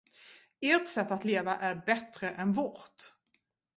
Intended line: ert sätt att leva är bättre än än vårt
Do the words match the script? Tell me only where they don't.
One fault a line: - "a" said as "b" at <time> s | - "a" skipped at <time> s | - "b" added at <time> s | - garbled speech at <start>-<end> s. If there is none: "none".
- "än" skipped at 2.5 s